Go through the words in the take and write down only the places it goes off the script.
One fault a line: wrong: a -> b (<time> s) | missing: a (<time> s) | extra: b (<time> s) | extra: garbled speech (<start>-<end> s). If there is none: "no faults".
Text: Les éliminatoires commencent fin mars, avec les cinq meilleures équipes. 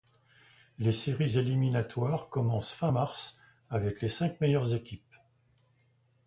extra: séries (0.9 s)